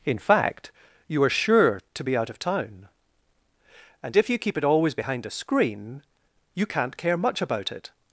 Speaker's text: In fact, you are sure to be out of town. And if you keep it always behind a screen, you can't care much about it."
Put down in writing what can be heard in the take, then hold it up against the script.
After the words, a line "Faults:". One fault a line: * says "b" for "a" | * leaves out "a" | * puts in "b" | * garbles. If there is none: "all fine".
In fact, you are sure to be out of town. And if you keep it always behind a screen, you can't care much about it."
Faults:
all fine